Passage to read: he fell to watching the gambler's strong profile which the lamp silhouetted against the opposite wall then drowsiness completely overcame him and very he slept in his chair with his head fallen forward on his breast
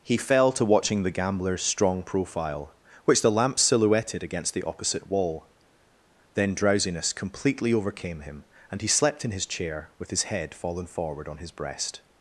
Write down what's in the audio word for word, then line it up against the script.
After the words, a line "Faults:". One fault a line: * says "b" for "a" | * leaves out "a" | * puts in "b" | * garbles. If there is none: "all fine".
he fell to watching the gambler's strong profile which the lamp silhouetted against the opposite wall then drowsiness completely overcame him and he slept in his chair with his head fallen forward on his breast
Faults:
* leaves out "very"